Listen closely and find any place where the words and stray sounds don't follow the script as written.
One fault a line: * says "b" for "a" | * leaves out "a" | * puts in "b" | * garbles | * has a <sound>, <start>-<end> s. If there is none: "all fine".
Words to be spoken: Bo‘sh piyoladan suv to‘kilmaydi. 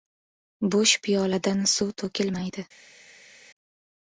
all fine